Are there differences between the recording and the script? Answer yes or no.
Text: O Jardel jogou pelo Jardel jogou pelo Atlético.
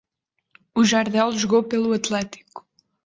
yes